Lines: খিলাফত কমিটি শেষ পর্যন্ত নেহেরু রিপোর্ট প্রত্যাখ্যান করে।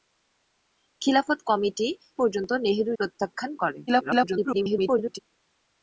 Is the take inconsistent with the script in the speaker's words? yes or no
yes